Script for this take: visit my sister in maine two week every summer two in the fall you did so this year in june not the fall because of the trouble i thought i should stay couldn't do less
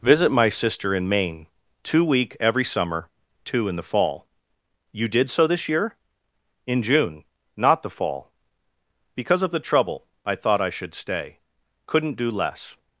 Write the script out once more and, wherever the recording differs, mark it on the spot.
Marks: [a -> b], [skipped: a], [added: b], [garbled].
visit my sister in maine two week every summer two in the fall you did so this year in june not the fall because of the trouble i thought i should stay couldn't do less